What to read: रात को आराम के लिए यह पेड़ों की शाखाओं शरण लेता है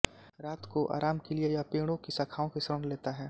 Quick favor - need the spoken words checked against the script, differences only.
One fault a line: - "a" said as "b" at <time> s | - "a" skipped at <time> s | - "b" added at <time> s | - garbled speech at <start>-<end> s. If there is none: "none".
- "की" added at 2.5 s